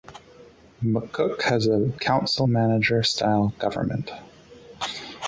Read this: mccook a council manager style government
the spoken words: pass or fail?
fail